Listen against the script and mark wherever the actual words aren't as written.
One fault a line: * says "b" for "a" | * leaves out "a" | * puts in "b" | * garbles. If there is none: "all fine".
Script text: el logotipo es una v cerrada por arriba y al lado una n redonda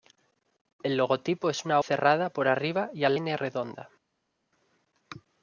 * leaves out "v"
* leaves out "lado una"